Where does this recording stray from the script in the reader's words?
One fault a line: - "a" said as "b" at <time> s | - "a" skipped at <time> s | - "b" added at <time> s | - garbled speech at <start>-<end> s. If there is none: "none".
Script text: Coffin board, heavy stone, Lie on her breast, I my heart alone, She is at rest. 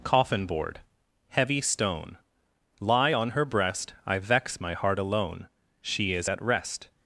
- "vex" added at 4.2 s